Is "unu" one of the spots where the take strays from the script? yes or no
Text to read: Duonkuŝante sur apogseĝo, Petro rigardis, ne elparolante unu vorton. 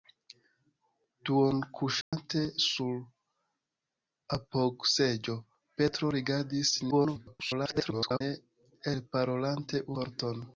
yes